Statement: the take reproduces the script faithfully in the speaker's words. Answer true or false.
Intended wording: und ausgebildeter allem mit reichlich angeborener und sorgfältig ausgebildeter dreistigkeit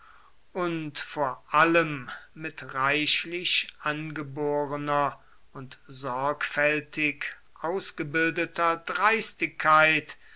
false